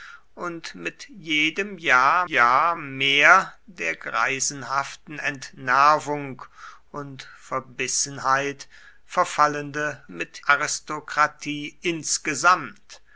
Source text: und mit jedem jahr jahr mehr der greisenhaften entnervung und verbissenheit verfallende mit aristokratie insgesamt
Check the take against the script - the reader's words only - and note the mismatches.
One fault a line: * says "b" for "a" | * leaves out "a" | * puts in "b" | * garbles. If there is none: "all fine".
all fine